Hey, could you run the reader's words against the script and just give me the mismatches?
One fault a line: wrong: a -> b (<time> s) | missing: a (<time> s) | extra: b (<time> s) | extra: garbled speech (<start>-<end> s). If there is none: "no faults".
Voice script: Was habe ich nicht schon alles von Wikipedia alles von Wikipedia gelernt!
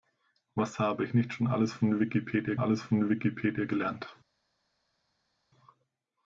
no faults